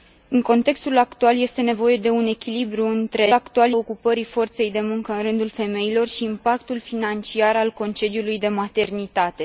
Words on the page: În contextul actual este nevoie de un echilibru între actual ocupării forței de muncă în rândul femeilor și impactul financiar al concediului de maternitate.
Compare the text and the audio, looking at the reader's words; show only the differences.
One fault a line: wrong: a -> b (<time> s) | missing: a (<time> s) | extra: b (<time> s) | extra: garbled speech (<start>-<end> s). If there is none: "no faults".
no faults